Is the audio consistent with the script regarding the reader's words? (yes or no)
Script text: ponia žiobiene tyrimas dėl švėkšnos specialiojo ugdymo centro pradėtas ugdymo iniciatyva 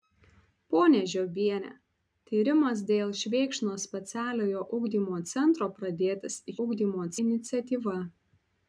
yes